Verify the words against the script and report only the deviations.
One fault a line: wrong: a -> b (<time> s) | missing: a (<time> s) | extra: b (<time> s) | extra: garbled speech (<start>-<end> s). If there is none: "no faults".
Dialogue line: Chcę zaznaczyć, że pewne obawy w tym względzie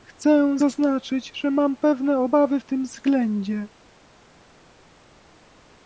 extra: mam (1.5 s)